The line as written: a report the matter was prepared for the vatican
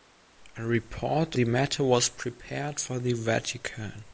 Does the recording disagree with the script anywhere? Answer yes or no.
no